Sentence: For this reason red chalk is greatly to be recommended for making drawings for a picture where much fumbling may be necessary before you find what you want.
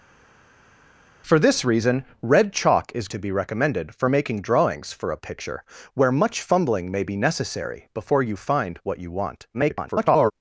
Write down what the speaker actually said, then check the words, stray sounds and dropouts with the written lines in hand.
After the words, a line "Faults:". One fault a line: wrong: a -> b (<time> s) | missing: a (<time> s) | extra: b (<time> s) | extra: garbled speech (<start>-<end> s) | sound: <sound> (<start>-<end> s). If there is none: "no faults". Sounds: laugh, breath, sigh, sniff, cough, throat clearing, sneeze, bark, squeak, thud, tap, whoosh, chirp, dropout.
For this reason red chalk is to be recommended for making drawings for a picture where much fumbling may be necessary before you find what you want. [garbled]
Faults:
missing: greatly (3.1 s)
extra: garbled speech (9.5-10.3 s)